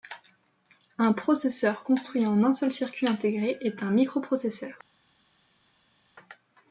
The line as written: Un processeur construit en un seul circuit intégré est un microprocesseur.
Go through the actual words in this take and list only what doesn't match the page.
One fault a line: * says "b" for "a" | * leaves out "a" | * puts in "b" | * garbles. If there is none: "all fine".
all fine